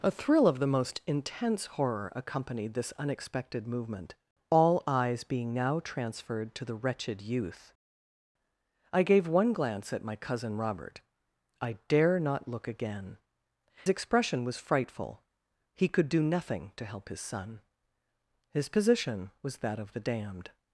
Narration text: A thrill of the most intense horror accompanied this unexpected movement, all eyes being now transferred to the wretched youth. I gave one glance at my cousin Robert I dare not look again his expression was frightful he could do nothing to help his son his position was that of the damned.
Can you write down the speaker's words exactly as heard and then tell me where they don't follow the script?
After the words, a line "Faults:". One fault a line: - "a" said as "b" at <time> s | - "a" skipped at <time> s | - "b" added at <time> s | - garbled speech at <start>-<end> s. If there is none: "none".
A thrill of the most intense horror accompanied this unexpected movement, all eyes being now transferred to the wretched youth. I gave one glance at my cousin Robert I dare not look again expression was frightful he could do nothing to help his son his position was that of the damned.
Faults:
- "his" skipped at 13.2 s